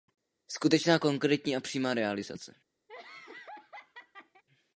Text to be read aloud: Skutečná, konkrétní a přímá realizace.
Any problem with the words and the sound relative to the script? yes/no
yes